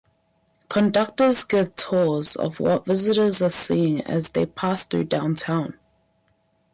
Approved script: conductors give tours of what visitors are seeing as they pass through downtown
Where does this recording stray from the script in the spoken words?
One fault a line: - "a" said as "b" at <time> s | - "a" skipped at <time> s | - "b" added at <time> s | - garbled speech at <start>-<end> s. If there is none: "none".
none